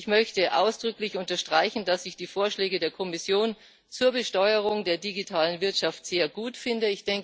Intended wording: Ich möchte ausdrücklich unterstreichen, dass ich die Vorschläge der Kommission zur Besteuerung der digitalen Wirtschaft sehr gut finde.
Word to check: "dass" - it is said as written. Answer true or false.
true